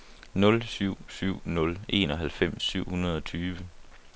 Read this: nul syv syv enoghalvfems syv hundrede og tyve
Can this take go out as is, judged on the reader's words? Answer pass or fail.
fail